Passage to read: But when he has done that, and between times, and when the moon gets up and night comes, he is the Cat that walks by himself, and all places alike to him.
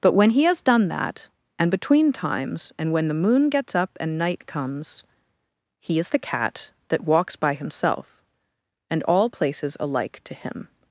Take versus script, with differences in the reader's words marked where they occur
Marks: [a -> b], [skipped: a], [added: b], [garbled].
But when he has done that, and between times, and when the moon gets up and night comes, he is the Cat that walks by himself, and all places alike to him.